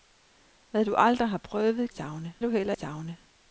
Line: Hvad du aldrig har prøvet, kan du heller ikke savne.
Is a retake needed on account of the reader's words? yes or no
yes